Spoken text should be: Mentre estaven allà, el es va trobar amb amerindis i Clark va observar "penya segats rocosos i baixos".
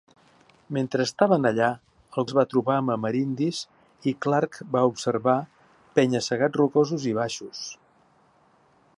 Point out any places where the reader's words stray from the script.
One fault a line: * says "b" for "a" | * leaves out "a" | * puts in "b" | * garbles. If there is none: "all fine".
all fine